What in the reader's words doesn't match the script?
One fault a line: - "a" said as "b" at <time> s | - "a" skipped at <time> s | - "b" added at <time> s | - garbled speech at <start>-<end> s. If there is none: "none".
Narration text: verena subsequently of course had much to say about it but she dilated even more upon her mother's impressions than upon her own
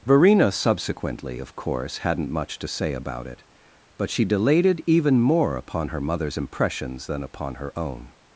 - "had" said as "hadn't" at 2.0 s